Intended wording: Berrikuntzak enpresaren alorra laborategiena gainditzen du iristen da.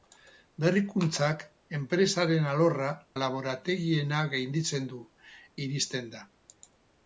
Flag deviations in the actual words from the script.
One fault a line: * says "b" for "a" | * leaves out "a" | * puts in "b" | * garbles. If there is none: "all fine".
all fine